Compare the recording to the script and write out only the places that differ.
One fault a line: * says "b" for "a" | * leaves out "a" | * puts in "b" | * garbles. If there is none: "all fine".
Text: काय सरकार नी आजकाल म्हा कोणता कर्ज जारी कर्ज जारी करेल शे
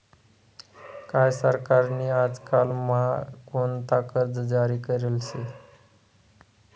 * leaves out "कर्ज जारी"